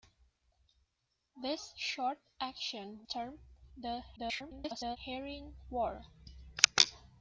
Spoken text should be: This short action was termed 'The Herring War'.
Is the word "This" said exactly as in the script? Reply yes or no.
yes